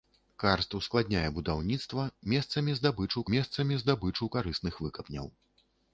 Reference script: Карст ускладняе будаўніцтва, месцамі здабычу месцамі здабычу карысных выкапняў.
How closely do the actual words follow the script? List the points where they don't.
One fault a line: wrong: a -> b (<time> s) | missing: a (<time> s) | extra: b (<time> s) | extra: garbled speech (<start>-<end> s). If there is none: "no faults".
no faults